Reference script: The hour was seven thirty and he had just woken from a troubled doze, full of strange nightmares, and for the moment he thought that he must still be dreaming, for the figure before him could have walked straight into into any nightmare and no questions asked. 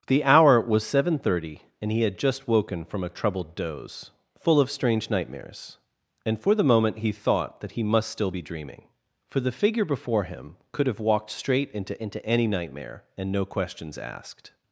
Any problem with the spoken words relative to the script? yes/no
no